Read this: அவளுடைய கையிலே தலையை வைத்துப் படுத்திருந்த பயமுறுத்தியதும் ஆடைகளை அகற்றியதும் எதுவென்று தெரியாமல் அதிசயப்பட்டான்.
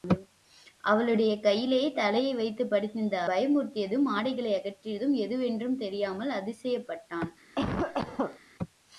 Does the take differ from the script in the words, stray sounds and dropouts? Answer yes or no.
yes